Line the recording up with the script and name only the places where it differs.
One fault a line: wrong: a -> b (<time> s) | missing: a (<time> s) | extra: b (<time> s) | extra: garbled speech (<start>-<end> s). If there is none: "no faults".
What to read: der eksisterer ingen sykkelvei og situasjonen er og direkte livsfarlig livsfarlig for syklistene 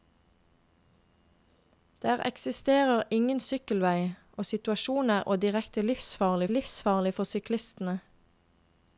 no faults